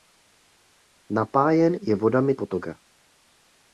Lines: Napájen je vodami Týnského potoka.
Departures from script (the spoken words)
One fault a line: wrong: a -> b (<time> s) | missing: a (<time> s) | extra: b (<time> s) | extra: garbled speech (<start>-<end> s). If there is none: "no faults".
missing: Týnského (2.3 s)